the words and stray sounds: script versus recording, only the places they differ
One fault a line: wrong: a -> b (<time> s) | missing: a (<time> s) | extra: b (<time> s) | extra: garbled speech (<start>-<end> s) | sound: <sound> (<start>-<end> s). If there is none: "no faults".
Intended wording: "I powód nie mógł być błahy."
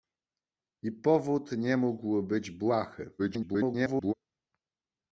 extra: garbled speech (3.2-4.1 s)